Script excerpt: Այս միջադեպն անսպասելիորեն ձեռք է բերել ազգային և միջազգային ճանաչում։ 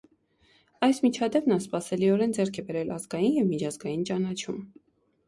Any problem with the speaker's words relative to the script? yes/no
no